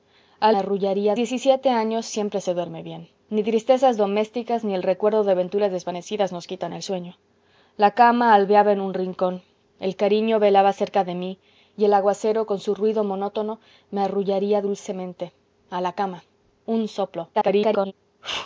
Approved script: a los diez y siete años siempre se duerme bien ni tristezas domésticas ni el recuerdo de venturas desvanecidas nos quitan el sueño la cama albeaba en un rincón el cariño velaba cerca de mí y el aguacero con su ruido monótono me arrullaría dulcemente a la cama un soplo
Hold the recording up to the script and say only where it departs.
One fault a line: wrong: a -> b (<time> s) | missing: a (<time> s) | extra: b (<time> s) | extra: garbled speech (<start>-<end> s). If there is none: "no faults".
wrong: los -> arrullaría (0.6 s)
extra: garbled speech (17.3-17.9 s)